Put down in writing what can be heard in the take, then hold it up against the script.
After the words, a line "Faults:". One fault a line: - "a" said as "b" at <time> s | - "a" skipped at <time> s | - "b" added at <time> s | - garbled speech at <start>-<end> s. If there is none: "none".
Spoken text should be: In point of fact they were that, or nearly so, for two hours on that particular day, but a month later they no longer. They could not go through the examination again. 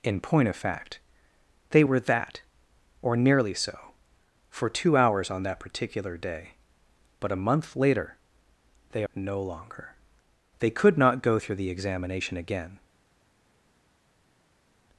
In point of fact they were that, or nearly so, for two hours on that particular day, but a month later they no longer. They could not go through the examination again.
Faults:
none